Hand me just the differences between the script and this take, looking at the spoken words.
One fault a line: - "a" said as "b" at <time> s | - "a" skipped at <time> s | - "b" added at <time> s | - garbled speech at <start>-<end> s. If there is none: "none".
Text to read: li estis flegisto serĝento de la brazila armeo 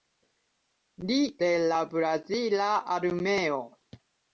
- "estis flegisto serĝento" skipped at 1.2 s